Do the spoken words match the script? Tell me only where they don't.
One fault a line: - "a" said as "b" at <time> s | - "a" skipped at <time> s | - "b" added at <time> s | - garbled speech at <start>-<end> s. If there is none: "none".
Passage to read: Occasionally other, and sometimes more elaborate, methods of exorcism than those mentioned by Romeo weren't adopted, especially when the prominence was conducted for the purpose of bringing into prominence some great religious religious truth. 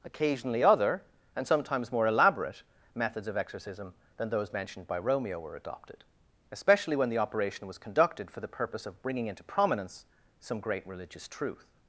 - "weren't" said as "were" at 5.4 s
- "prominence" said as "operation" at 7.2 s
- "religious" skipped at 11.3 s